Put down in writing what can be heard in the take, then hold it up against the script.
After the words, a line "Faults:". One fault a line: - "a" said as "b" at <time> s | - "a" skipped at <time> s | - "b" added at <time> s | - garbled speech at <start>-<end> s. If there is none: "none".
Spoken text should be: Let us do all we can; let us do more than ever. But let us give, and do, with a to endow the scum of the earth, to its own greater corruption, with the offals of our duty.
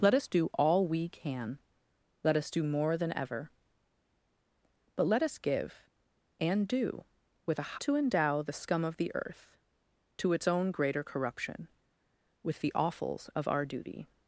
Let us do all we can; let us do more than ever. But let us give, and do, with a to endow the scum of the earth, to its own greater corruption, with the offals of our duty.
Faults:
none